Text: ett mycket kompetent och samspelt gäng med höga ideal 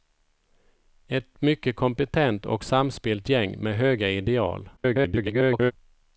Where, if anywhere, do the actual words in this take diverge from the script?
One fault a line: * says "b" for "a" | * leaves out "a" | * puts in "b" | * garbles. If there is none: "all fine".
* garbles